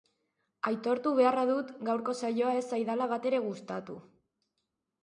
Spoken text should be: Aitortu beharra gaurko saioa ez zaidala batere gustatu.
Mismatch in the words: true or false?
true